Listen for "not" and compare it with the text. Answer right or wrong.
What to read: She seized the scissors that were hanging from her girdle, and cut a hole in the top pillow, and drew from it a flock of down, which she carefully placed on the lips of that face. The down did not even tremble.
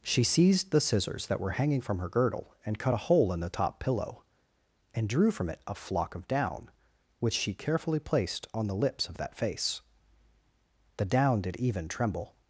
wrong